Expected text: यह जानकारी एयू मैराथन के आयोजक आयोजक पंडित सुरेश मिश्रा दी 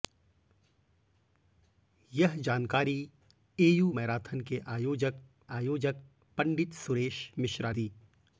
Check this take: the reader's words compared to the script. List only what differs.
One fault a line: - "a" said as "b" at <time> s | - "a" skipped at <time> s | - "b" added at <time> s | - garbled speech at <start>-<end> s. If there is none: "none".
none